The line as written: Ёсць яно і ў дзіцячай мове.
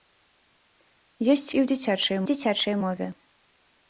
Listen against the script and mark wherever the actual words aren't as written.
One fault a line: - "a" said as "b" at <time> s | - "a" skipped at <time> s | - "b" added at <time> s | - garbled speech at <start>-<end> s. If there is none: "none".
- "яно" skipped at 1.5 s
- "дзіцячай" added at 2.3 s